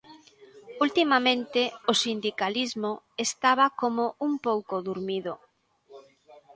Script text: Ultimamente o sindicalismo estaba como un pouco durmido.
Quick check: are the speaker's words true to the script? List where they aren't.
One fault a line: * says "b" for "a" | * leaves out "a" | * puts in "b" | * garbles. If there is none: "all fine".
all fine